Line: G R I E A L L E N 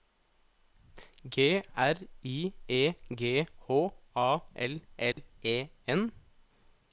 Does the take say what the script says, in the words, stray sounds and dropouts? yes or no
no